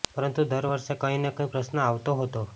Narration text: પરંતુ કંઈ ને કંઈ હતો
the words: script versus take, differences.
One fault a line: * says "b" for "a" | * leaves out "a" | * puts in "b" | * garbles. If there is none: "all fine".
* puts in "દર વર્ષે"
* puts in "પ્રશ્ન આવતો"